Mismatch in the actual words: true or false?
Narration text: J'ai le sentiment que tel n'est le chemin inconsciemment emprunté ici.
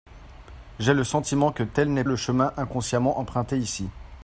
false